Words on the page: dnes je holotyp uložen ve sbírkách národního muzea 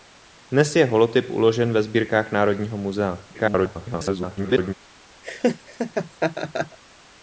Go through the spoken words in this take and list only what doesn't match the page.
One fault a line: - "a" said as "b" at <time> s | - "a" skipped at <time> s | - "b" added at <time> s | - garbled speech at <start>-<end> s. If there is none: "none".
- garbled speech at 3.3-4.7 s